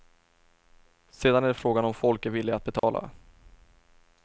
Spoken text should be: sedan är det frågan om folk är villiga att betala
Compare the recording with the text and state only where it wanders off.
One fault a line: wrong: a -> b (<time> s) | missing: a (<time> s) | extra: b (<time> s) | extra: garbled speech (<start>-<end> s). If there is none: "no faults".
no faults